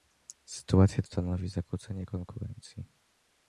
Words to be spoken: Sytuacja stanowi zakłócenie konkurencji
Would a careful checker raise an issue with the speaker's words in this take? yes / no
no